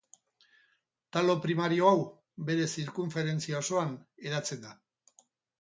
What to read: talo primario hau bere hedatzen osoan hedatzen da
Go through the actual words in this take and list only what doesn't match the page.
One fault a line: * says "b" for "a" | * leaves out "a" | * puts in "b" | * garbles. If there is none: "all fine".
* says "zirkunferentzia" for "hedatzen"